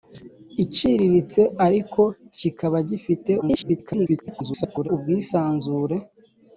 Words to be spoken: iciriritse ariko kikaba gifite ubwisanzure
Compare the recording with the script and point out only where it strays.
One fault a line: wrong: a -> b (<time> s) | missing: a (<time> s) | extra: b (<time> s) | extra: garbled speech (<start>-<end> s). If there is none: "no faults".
extra: garbled speech (3.4-4.9 s)